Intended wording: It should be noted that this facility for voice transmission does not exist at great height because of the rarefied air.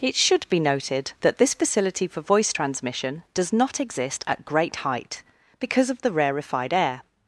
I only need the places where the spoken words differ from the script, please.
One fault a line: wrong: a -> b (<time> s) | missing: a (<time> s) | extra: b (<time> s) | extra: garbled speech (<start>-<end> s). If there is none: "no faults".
no faults